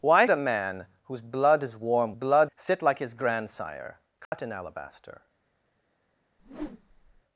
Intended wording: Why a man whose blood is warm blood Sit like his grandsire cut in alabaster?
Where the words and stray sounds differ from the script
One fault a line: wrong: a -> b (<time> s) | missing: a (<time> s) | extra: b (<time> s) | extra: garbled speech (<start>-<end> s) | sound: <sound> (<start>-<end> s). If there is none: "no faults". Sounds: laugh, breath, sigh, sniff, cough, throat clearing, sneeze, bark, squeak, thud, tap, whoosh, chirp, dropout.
sound: dropout (4.3-4.3 s)
sound: whoosh (6.4-7.2 s)